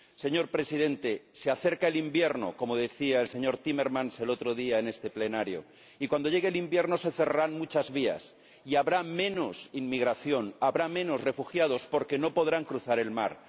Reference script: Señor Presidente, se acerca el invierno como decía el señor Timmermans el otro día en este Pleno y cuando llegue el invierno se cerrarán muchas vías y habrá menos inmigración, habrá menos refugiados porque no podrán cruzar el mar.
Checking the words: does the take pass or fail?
pass